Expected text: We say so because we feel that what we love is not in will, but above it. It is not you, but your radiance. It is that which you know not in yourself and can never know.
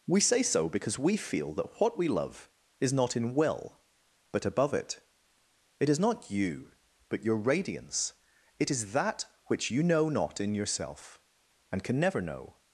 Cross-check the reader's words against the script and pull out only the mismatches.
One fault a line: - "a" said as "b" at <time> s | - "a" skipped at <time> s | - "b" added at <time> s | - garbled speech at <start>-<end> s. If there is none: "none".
none